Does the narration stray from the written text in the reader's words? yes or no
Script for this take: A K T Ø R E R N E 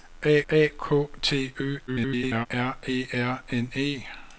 yes